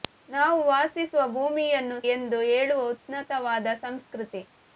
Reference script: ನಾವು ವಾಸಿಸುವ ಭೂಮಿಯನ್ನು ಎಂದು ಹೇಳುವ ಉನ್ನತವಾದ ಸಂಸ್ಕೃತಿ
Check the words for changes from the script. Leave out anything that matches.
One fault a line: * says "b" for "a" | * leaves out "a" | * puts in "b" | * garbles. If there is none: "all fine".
all fine